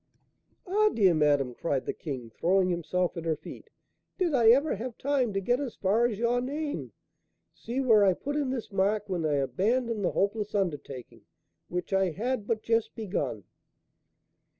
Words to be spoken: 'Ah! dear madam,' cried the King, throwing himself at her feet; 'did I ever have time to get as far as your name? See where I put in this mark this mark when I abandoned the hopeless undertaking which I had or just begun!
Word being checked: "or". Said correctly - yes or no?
no